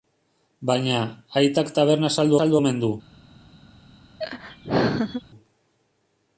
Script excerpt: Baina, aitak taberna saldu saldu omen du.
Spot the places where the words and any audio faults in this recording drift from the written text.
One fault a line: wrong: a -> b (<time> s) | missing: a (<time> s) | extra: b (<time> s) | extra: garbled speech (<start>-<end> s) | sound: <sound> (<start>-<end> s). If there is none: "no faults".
sound: laugh (4.2-5.2 s)